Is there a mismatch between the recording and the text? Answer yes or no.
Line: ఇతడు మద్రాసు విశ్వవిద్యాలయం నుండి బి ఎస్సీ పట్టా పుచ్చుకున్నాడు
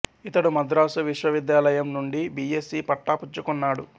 no